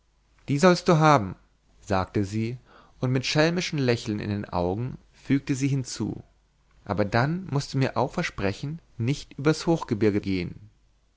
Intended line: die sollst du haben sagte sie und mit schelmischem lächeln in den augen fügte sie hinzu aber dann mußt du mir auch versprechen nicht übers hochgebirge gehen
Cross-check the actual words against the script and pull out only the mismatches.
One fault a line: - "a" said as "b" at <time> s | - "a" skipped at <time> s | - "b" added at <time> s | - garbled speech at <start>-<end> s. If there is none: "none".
none